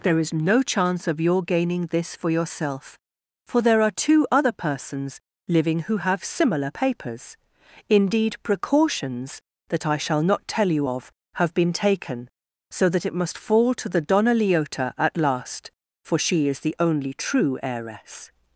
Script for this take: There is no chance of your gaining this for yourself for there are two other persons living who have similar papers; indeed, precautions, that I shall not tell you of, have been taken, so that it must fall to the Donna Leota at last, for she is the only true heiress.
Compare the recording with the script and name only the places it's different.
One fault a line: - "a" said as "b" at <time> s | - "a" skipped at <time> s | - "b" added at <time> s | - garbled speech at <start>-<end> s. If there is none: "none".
none